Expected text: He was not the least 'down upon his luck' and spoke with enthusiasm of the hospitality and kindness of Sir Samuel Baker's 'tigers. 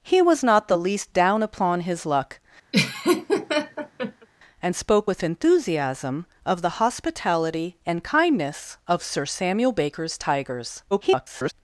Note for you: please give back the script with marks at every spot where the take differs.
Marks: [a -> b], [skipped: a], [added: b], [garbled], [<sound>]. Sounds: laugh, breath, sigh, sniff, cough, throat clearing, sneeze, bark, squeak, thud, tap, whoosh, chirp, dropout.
He was not the least 'down upon his luck' [laugh] and spoke with enthusiasm of the hospitality and kindness of Sir Samuel Baker's 'tigers. [garbled]